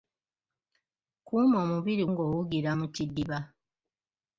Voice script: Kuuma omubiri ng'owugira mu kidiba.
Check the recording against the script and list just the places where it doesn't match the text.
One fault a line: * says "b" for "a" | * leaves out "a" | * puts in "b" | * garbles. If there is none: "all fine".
all fine